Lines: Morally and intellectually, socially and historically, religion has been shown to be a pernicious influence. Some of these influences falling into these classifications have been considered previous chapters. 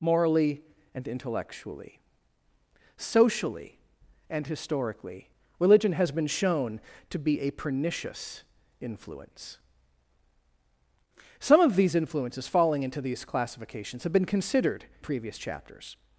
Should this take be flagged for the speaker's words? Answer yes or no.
no